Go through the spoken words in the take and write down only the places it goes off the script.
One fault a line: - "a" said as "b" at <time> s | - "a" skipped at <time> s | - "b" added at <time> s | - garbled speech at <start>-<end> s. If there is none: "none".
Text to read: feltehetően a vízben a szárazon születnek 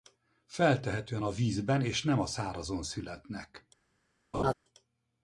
- "és nem" added at 1.8 s